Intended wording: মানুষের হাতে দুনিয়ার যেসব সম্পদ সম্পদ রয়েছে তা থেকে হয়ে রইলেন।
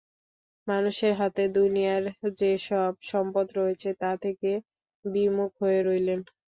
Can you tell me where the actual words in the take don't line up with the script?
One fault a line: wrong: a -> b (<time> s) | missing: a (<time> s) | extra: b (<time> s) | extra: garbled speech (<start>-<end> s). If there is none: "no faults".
missing: সম্পদ (3.5 s)
extra: বিমুখ (5.0 s)